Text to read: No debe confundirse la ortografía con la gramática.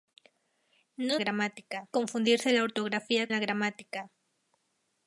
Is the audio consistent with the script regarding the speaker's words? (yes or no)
no